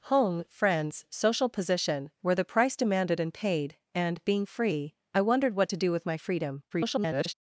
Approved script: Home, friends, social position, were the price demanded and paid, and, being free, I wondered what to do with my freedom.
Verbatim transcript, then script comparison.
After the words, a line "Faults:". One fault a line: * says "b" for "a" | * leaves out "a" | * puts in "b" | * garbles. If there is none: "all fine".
Home, friends, social position, were the price demanded and paid, and, being free, I wondered what to do with my freedom. [garbled]
Faults:
* garbles